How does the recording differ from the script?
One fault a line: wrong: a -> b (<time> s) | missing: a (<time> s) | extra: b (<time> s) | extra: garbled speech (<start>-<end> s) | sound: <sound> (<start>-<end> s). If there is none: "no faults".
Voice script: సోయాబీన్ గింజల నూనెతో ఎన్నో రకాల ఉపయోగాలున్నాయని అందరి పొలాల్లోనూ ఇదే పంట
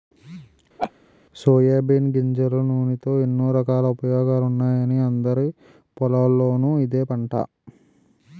sound: laugh (0.8-0.9 s)